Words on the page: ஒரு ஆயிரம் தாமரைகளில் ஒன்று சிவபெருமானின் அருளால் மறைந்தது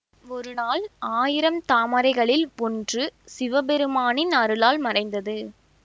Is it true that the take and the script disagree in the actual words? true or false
true